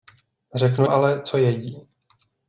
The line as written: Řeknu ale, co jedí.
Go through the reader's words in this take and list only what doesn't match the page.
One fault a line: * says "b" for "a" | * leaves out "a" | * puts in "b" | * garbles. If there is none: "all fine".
all fine